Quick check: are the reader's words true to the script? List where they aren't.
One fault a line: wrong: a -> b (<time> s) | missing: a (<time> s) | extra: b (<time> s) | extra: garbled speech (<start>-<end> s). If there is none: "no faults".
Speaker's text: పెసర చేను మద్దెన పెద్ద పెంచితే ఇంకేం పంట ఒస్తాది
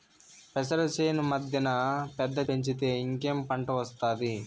no faults